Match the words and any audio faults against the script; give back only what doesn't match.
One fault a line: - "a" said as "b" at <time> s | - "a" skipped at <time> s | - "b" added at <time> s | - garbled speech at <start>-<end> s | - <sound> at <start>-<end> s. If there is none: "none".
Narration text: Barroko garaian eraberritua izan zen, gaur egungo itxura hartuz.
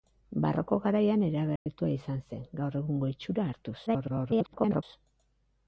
- dropout at 1.6-1.7 s
- garbled speech at 3.9-4.8 s